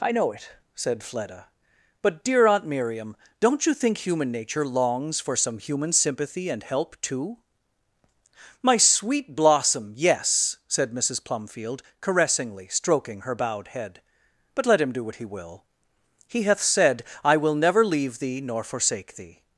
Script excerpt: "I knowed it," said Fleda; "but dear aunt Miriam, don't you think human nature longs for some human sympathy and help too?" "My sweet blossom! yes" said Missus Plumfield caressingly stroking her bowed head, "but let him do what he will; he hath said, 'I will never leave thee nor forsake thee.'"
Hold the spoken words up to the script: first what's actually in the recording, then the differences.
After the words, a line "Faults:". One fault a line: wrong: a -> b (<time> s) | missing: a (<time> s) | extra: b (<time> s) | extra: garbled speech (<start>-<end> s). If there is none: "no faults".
"I know it," said Fleda; "but dear aunt Miriam, don't you think human nature longs for some human sympathy and help too?" "My sweet blossom! yes" said Missus Plumfield caressingly stroking her bowed head, "but let him do what he will; he hath said, 'I will never leave thee nor forsake thee.'"
Faults:
wrong: knowed -> know (0.1 s)